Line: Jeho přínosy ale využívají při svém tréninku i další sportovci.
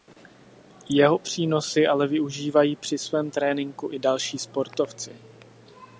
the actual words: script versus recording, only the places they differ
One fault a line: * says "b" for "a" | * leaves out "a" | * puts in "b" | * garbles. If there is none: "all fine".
all fine